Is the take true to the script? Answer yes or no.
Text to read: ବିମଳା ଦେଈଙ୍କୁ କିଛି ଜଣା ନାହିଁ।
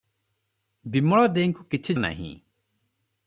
no